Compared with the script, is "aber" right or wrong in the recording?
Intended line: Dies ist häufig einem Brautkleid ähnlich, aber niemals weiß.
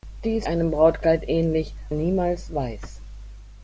wrong